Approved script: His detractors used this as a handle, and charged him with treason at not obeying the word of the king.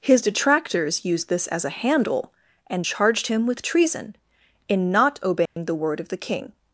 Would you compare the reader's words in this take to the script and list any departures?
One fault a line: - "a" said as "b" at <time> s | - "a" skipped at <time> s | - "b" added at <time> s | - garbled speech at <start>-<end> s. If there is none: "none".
- "at" said as "in" at 4.7 s